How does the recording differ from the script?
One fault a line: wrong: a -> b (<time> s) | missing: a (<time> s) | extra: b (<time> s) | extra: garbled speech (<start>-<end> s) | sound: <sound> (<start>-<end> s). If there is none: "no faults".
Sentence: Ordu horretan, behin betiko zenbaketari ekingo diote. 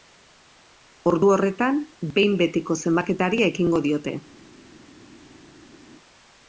no faults